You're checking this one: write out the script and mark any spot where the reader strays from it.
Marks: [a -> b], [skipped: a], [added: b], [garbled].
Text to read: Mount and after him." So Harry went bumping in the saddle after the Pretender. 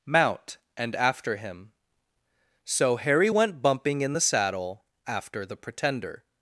Mount and after him." So Harry went bumping in the saddle after the Pretender.